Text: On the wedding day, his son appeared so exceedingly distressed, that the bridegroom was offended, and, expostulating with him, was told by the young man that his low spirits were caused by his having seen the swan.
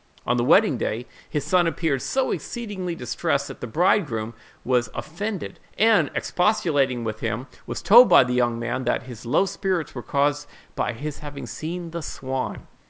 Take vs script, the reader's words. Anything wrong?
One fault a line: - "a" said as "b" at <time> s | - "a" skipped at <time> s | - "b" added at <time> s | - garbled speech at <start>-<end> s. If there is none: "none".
none